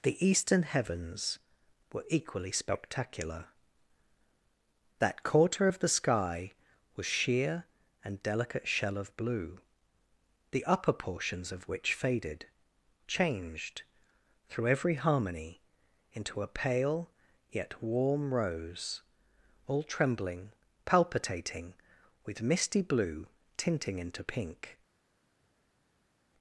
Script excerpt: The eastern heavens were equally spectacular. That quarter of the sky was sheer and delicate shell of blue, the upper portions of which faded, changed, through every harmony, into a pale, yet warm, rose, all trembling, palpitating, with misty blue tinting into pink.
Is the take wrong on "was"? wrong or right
right